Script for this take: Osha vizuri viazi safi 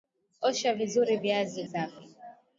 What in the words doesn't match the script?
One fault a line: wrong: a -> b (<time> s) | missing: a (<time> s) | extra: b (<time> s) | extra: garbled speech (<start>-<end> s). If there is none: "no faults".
no faults